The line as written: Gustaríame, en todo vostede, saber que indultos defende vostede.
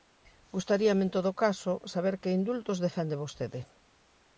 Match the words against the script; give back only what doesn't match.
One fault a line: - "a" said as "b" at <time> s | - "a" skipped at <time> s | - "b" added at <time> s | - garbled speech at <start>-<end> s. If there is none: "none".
- "vostede" said as "caso" at 1.4 s